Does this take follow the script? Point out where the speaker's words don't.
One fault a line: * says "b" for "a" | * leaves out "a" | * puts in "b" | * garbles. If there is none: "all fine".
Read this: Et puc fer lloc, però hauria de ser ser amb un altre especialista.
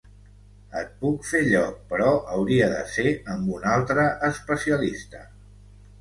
* leaves out "ser"